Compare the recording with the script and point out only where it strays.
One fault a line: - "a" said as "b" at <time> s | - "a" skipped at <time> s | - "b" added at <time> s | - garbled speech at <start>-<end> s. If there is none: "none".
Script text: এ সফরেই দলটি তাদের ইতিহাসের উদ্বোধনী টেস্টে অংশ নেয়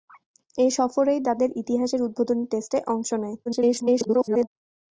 - "দলটি" skipped at 1.2 s
- garbled speech at 3.5-4.5 s